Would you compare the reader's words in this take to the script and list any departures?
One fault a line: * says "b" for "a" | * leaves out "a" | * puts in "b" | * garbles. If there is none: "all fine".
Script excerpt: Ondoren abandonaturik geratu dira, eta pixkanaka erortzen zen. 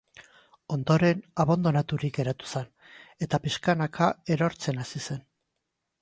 * says "zen" for "dira"
* puts in "hasi"